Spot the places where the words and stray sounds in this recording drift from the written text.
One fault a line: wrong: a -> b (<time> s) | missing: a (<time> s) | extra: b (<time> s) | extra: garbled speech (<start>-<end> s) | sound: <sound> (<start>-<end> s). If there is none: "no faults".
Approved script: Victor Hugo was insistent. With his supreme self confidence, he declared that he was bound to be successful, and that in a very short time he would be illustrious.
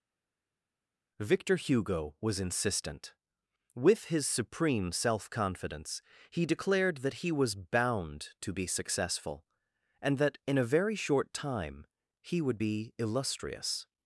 no faults